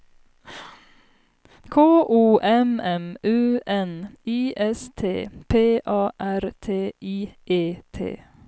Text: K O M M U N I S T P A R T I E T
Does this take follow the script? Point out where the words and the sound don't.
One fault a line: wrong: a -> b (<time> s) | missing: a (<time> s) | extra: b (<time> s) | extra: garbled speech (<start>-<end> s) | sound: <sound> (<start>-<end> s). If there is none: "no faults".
no faults